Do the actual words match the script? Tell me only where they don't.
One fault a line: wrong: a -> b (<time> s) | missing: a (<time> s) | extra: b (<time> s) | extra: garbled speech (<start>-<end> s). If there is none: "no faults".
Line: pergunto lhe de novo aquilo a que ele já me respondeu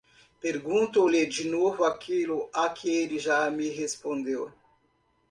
no faults